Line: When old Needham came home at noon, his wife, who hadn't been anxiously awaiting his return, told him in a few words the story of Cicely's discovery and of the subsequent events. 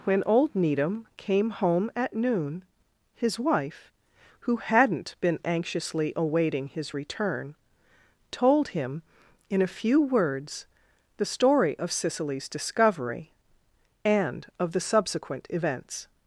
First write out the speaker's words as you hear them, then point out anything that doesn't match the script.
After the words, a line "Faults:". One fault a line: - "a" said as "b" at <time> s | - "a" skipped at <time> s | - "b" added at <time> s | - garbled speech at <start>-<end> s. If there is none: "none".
When old Needham came home at noon, his wife, who hadn't been anxiously awaiting his return, told him in a few words the story of Cicely's discovery and of the subsequent events.
Faults:
none